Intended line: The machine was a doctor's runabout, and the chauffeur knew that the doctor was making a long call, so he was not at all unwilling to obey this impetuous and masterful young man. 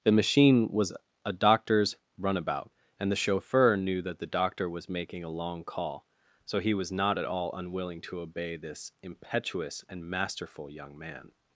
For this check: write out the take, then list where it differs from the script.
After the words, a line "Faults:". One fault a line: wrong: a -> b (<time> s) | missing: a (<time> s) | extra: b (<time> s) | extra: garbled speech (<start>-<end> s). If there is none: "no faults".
The machine was a doctor's runabout, and the chauffeur knew that the doctor was making a long call, so he was not at all unwilling to obey this impetuous and masterful young man.
Faults:
no faults